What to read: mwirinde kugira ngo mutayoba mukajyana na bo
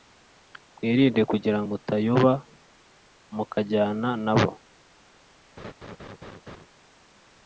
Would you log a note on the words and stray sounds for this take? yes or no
yes